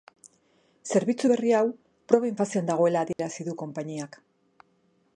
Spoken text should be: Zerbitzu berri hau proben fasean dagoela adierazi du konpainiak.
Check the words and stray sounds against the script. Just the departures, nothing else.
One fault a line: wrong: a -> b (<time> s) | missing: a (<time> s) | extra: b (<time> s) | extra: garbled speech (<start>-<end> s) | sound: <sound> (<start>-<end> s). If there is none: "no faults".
sound: dropout (3.1-3.2 s)